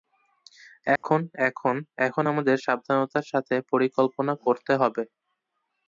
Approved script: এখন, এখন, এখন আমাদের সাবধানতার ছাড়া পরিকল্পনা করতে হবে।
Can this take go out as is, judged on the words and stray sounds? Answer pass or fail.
fail